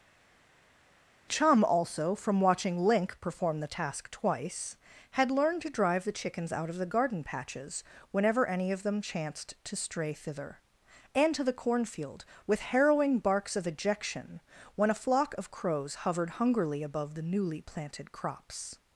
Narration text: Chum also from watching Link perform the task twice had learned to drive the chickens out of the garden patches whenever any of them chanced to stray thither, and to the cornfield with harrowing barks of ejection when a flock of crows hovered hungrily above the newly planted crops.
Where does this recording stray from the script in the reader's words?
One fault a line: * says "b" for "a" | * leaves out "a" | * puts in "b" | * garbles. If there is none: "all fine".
all fine